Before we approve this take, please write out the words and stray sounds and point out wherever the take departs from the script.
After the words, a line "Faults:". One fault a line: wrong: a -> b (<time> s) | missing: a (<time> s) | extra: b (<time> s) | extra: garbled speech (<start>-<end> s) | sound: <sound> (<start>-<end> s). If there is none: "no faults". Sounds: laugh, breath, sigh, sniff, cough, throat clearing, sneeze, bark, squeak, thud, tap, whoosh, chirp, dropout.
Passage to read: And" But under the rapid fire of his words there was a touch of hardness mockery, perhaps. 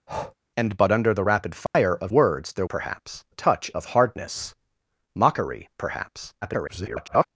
And" But under the rapid fire of words there perhaps a touch of hardness mockery, perhaps. [garbled]
Faults:
sound: breath (0.1-0.3 s)
sound: dropout (1.7-1.7 s)
missing: his (2.1 s)
wrong: was -> perhaps (2.7 s)
extra: garbled speech (6.4-7.3 s)